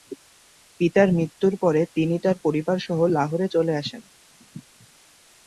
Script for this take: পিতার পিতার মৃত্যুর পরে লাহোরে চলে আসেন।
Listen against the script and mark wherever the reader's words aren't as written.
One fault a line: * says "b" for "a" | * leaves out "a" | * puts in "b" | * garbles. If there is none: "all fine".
* leaves out "পিতার"
* puts in "তিনি তার পরিবারসহ"